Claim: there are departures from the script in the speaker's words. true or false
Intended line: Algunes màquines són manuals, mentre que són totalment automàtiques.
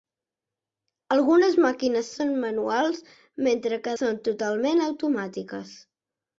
false